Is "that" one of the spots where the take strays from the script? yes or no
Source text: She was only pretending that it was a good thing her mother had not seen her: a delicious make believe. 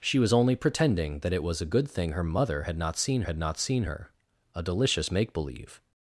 no